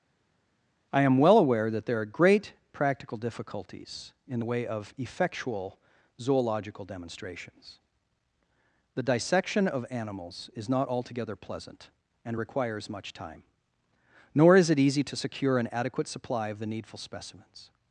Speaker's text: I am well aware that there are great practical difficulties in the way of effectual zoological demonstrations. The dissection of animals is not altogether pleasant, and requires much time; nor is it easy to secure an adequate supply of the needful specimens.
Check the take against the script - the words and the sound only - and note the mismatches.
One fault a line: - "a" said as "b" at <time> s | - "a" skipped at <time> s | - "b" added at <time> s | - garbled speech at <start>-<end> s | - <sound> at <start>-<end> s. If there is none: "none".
none